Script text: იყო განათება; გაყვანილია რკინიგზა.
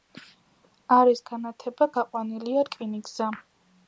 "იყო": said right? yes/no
no